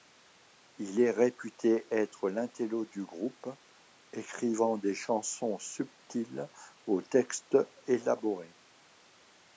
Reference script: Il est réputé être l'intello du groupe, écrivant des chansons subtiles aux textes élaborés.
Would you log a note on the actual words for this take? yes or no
no